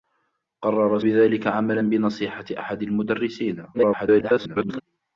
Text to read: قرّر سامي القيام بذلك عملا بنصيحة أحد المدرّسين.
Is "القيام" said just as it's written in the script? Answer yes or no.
no